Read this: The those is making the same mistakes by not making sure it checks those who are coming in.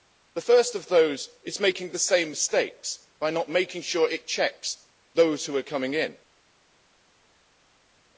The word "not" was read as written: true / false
true